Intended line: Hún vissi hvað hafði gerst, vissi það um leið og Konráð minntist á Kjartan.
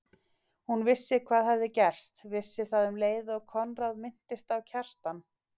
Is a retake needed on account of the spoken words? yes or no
no